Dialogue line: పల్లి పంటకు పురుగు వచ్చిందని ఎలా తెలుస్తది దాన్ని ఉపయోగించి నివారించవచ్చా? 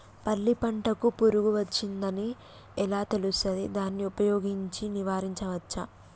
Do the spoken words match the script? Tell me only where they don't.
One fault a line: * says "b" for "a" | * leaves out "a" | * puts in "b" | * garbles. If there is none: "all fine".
all fine